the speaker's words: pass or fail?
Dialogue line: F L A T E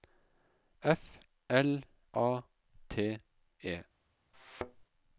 pass